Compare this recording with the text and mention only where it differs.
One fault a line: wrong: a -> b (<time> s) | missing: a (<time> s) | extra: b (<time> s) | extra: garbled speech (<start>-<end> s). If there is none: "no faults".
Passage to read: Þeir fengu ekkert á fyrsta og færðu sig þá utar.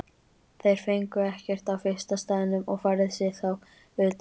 extra: staðnum (2.2 s)